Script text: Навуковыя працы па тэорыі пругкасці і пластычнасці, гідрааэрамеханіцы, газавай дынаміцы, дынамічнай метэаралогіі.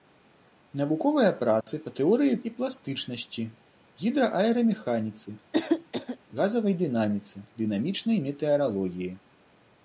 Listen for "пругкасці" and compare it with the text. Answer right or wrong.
wrong